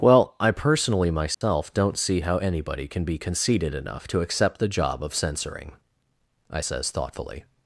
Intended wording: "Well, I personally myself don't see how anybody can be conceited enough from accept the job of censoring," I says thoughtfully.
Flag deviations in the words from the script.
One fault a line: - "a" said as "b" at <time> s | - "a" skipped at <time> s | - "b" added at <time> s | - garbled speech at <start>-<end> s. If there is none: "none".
- "from" said as "to" at 4.1 s